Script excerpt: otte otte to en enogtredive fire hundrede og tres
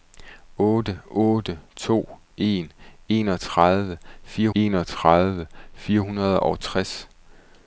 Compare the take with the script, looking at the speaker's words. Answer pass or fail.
fail